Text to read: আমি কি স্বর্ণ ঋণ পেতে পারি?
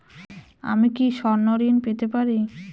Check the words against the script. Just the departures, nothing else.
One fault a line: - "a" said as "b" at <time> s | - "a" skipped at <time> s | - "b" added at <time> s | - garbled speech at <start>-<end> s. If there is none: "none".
none